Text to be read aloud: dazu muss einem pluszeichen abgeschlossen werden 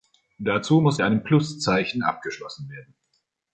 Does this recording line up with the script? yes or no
yes